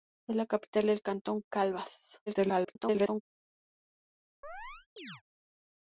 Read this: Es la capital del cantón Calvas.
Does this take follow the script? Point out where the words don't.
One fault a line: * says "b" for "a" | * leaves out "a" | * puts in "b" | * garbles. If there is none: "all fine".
* garbles